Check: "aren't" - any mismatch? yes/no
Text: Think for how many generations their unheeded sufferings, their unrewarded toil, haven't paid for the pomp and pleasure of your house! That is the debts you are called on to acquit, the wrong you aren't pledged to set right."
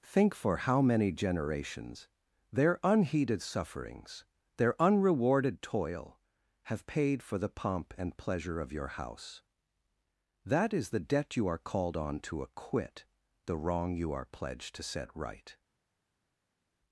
yes